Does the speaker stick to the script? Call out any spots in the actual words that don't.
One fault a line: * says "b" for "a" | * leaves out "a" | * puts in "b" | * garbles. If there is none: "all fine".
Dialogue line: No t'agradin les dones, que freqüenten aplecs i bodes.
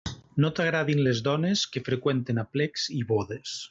all fine